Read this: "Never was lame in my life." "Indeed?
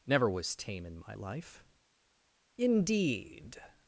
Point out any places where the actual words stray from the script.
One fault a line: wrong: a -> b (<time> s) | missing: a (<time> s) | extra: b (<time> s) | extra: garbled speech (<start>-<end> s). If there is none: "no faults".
wrong: lame -> tame (0.6 s)